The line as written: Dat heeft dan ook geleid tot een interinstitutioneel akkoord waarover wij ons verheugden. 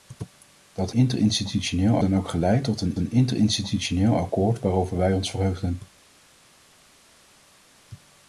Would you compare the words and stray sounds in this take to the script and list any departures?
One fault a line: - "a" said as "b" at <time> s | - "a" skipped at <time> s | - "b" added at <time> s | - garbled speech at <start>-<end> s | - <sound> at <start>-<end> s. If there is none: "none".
- "heeft" said as "interinstitutioneel" at 0.9 s
- "een" added at 3.0 s